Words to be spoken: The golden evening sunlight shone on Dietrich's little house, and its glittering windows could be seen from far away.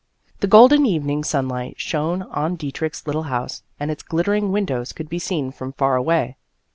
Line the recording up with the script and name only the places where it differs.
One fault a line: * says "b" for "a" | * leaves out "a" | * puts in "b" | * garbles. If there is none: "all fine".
all fine